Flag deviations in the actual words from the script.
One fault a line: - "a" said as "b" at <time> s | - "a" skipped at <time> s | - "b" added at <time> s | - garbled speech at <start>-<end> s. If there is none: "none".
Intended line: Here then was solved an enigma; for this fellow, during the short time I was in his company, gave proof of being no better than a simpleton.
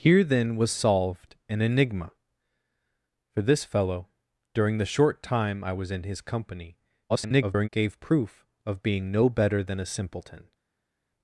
- garbled speech at 7.1-7.7 s